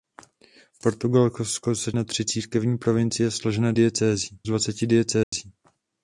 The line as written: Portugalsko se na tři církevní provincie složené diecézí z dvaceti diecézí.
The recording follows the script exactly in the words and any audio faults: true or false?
false